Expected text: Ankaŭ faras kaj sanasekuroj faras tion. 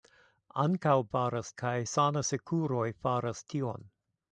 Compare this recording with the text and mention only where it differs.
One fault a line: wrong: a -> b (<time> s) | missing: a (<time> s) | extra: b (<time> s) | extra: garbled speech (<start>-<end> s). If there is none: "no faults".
no faults